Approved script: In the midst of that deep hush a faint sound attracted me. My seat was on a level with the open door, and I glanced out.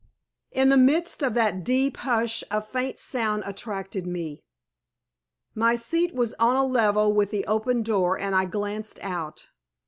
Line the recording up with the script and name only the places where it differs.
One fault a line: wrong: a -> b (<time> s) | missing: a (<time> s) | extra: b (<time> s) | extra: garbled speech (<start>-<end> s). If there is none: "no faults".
no faults